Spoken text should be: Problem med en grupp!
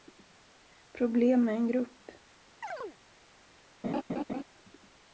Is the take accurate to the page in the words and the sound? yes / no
no